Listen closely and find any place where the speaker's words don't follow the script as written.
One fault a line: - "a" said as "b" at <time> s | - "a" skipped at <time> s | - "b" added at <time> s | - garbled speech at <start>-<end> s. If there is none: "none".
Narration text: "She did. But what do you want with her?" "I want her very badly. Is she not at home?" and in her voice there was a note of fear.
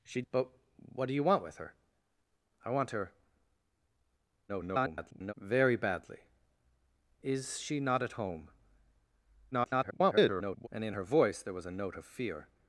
- "did" skipped at 0.2 s
- garbled speech at 4.5-5.3 s
- garbled speech at 9.5-10.7 s